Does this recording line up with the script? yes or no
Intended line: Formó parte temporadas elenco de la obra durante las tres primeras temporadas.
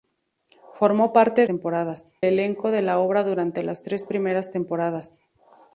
yes